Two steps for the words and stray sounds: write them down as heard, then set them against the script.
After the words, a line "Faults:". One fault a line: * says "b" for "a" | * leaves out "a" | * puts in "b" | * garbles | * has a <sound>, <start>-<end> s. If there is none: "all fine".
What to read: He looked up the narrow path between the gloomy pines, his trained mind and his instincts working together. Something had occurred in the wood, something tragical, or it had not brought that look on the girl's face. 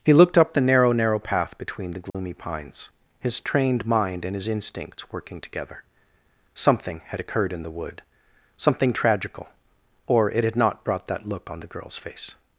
He looked up the narrow narrow path between the gloomy pines, his trained mind and his instincts working together. Something had occurred in the wood, something tragical, or it had not brought that look on the girl's face.
Faults:
* puts in "narrow"
* has a dropout, 2.1-2.1 s